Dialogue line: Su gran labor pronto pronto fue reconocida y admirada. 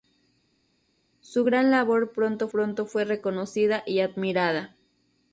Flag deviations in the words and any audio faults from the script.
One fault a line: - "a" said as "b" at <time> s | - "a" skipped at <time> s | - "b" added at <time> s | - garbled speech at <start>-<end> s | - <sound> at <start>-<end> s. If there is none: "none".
none